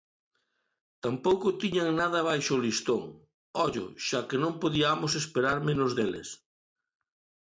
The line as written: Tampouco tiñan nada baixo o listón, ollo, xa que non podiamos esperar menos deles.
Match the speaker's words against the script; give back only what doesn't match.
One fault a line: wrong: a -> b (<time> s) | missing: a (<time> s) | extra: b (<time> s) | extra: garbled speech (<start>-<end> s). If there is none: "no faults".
no faults